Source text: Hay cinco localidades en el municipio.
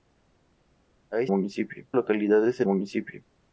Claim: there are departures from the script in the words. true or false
true